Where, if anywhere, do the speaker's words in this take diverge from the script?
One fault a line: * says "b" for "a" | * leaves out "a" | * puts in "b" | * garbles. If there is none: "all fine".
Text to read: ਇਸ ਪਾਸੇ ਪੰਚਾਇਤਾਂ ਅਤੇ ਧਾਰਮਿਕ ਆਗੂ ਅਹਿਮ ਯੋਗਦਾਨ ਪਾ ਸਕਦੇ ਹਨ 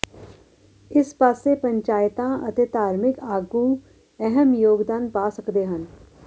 all fine